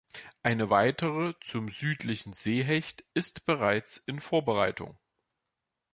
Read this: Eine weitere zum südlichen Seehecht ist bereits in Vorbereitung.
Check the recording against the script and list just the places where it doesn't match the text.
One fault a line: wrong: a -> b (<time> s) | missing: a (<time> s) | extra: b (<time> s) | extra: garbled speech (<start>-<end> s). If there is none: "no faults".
no faults